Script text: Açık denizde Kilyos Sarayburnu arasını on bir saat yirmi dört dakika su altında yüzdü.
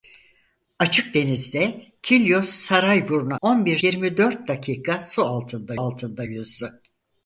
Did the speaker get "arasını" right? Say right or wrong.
wrong